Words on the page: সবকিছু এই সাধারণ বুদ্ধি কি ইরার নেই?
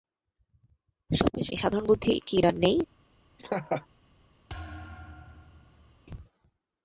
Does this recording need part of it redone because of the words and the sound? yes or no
yes